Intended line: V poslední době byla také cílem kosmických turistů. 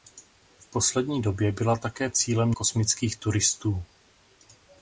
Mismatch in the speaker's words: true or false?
false